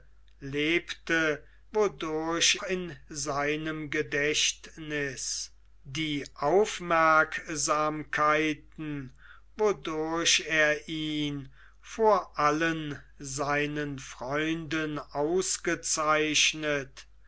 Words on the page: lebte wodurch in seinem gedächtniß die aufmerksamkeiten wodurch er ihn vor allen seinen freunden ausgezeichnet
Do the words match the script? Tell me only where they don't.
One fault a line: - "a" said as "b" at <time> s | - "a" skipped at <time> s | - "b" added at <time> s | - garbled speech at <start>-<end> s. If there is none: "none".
none